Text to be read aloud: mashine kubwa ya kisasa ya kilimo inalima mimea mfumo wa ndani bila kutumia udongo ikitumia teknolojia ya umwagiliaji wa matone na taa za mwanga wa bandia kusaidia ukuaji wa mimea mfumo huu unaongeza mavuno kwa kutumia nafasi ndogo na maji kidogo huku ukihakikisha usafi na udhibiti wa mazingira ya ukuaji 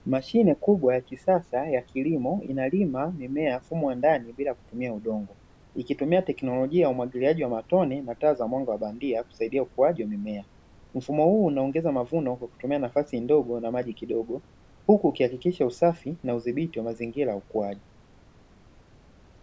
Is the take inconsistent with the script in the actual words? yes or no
no